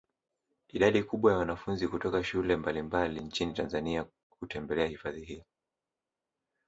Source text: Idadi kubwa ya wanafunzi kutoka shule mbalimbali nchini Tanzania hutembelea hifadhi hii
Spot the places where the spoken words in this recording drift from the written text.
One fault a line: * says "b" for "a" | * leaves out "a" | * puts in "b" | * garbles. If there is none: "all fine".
all fine